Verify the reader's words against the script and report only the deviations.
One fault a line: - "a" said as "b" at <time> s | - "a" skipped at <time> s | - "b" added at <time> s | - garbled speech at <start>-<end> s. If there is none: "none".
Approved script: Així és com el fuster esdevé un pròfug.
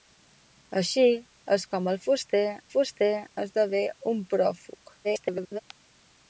- "fuster" added at 2.7 s
- garbled speech at 5.0-5.6 s